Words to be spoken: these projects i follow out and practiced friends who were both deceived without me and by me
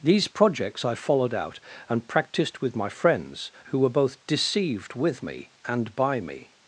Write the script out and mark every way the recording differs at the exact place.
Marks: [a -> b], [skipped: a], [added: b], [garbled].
these projects i [follow -> followed] out and practiced [added: with my] friends who were both deceived [without -> with] me and by me